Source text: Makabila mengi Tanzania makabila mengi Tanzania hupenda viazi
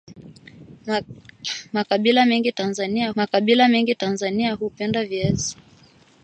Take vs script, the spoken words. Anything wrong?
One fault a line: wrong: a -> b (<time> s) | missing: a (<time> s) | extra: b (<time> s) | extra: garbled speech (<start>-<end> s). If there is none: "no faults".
no faults